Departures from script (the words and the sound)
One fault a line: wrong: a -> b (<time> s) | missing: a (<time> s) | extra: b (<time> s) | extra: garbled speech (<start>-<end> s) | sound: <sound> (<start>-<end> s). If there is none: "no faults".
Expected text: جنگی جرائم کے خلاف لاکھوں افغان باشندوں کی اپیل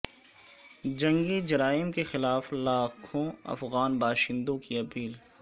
no faults